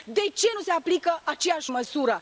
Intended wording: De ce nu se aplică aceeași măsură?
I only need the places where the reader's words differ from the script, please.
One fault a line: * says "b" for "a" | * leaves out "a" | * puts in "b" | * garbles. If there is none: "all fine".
all fine